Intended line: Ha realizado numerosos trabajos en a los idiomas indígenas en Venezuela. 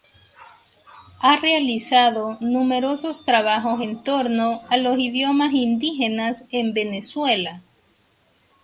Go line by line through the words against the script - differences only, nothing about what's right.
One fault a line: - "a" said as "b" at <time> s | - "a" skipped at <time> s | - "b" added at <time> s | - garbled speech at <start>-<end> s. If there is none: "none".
- "torno" added at 4.0 s